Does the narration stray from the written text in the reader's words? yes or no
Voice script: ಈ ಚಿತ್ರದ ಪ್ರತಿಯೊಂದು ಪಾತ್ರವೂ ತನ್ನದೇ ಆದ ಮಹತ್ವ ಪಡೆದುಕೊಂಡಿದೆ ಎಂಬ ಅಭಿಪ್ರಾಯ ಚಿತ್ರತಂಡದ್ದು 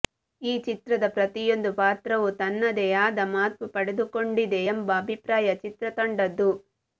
no